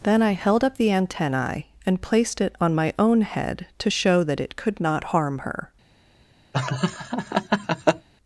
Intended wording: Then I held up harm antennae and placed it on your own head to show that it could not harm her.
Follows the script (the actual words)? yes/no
no